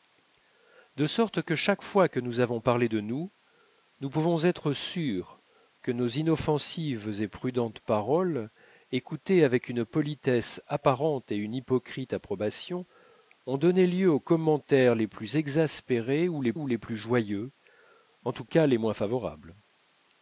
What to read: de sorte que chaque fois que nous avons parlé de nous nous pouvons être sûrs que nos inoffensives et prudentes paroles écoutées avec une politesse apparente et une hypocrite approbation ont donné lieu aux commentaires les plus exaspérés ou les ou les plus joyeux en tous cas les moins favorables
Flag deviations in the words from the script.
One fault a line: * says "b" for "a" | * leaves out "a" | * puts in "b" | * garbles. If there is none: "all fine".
all fine